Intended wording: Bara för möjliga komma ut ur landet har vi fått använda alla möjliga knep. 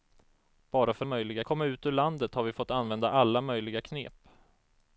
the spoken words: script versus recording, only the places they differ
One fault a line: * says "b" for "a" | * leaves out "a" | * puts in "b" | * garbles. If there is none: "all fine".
all fine